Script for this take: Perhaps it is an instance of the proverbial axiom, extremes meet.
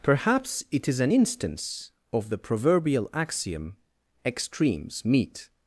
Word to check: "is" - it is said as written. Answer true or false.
true